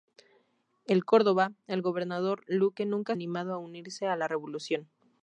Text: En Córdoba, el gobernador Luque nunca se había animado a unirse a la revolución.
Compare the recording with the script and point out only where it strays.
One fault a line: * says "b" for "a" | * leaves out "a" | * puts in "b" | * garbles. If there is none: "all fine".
* leaves out "se había"